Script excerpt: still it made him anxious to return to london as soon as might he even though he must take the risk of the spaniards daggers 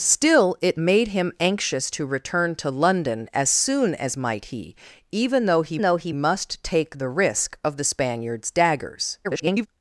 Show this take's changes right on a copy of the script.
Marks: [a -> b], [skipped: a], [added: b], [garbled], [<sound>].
still it made him anxious to return to london as soon as might he even though he [added: though he] must take the risk of the spaniards daggers [garbled]